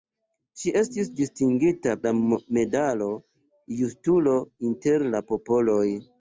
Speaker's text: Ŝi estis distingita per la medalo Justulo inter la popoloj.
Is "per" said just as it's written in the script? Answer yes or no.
no